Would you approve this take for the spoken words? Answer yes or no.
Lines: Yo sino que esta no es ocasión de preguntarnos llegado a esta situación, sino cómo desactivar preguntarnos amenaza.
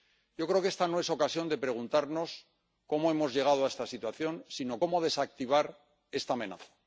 no